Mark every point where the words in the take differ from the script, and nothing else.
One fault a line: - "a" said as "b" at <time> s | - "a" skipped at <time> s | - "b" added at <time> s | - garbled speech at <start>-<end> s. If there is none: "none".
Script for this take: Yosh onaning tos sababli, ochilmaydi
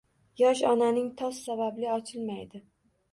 none